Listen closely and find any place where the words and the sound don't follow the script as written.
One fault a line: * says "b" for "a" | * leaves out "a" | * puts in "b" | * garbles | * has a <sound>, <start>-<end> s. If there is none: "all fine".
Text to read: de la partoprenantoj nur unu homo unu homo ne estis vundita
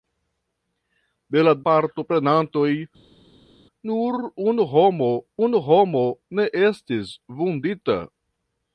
all fine